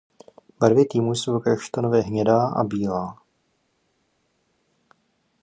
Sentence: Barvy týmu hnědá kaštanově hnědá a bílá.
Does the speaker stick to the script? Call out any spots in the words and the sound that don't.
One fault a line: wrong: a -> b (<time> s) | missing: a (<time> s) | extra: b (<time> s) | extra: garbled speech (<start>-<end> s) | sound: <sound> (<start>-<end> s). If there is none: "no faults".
wrong: hnědá -> jsou (1.1 s)